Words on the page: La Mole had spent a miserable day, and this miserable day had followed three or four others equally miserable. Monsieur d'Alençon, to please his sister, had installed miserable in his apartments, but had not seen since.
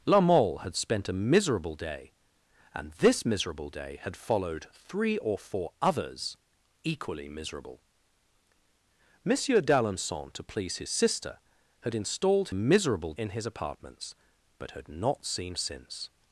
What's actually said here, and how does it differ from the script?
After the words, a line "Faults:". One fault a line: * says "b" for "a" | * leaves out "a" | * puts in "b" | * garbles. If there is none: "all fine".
La Mole had spent a miserable day, and this miserable day had followed three or four others equally miserable. Monsieur d'Alençon, to please his sister, had installed miserable in his apartments, but had not seen since.
Faults:
all fine